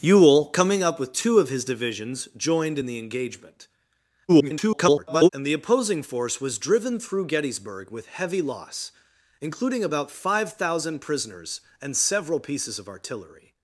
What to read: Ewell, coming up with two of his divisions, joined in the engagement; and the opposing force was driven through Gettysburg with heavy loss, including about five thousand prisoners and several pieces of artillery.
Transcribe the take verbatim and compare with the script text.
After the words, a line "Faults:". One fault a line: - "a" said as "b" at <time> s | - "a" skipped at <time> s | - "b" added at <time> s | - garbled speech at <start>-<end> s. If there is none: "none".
Ewell, coming up with two of his divisions, joined in the engagement; [garbled] and the opposing force was driven through Gettysburg with heavy loss, including about five thousand prisoners and several pieces of artillery.
Faults:
- garbled speech at 4.3-5.3 s